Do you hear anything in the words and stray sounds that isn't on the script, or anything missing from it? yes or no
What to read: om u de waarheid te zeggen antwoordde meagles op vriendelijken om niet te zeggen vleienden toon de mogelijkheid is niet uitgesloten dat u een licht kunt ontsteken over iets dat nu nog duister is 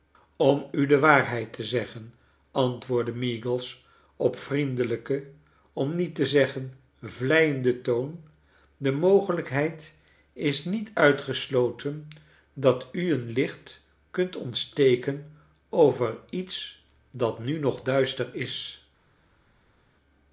no